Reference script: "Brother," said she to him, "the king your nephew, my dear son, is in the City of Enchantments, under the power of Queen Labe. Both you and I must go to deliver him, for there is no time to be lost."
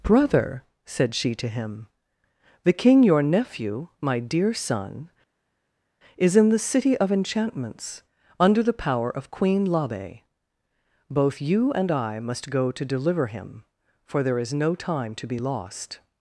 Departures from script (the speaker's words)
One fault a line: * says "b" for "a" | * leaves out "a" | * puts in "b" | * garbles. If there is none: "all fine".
all fine